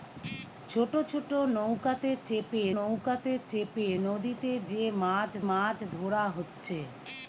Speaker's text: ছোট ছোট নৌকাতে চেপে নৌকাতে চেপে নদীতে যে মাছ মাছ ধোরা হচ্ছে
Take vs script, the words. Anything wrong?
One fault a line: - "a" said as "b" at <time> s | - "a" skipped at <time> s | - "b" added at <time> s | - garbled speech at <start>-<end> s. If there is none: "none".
none